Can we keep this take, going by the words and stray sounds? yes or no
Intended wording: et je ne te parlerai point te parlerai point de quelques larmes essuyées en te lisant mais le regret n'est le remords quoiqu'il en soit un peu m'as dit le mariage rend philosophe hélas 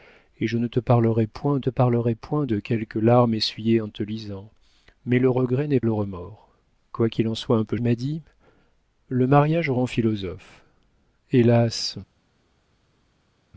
yes